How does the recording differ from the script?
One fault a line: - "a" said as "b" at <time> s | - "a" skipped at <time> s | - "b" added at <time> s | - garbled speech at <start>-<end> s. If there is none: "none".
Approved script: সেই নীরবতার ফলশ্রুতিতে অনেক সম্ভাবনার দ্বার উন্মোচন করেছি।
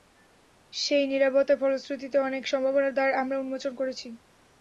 - "আমরা" added at 3.2 s